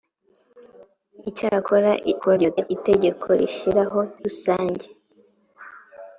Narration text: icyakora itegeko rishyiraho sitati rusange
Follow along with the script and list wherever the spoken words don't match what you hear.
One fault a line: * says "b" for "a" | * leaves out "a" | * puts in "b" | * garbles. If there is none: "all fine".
* garbles
* leaves out "sitati"